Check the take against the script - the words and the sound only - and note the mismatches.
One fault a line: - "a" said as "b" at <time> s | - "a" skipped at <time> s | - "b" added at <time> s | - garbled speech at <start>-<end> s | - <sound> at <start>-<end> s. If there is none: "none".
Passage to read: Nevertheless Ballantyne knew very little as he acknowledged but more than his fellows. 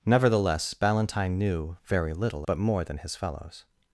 - "as he acknowledged" skipped at 2.5 s